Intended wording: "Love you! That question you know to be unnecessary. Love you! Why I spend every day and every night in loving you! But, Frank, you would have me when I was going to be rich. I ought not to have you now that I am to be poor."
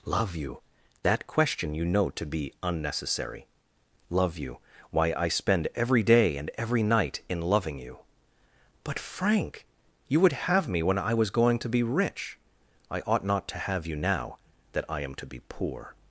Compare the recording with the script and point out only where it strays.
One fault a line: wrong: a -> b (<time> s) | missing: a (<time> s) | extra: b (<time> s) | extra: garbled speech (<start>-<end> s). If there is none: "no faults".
no faults